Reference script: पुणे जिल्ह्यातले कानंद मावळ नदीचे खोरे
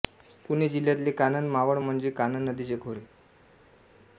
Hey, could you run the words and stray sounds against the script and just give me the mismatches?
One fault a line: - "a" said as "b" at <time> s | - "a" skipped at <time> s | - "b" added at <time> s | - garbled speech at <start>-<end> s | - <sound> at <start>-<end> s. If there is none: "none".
- "म्हणजे कानंद" added at 1.8 s